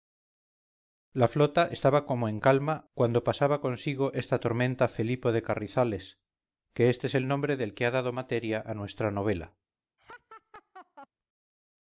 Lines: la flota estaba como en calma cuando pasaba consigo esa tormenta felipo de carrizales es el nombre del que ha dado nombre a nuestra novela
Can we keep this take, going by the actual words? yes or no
no